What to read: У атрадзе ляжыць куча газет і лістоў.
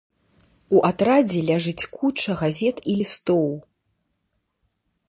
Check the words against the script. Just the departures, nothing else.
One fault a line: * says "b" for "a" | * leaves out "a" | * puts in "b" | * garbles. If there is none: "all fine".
all fine